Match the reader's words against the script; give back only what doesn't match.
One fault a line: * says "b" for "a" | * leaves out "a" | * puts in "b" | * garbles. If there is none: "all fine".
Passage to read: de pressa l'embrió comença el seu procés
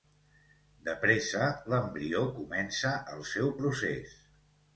all fine